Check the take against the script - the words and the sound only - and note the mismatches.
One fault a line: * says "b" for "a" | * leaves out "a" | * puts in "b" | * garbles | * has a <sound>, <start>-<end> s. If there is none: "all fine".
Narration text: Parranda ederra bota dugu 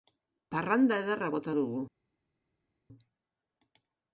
all fine